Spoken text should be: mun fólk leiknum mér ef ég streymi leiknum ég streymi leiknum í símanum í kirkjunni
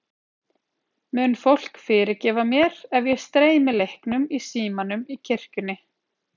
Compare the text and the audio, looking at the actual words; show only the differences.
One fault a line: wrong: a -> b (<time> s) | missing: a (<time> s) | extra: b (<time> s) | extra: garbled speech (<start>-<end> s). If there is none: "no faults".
wrong: leiknum -> fyrirgefa (1.9 s)
missing: ég streymi leiknum (4.3 s)